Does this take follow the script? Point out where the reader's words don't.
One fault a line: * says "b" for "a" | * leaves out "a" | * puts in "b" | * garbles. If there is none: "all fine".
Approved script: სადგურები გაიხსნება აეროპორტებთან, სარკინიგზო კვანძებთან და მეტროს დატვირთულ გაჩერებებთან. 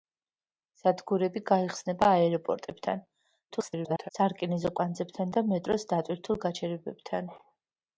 * garbles